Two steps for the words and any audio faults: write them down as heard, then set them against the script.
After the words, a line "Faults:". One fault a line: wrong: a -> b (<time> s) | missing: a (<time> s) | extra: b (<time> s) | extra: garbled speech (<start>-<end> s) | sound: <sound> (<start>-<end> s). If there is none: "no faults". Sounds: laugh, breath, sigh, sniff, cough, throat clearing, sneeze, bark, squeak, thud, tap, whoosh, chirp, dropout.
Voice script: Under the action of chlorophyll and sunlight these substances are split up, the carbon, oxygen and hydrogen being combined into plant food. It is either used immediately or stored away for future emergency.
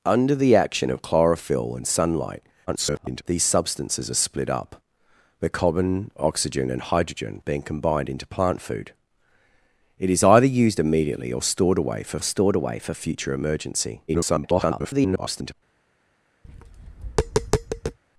Under the action of chlorophyll and sunlight [garbled] these substances are split up, the carbon, oxygen and hydrogen being combined into plant food. It is either used immediately or stored away for stored away for future emergency. [garbled]
Faults:
extra: garbled speech (2.7-3.2 s)
extra: stored away for (12.2 s)
extra: garbled speech (14.1-15.5 s)
sound: tap (16.4-18.0 s)